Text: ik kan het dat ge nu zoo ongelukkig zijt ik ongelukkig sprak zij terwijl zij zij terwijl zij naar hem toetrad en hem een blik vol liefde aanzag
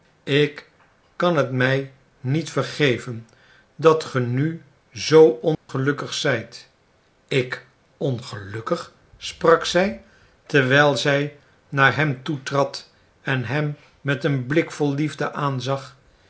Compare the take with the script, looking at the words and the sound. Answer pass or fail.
fail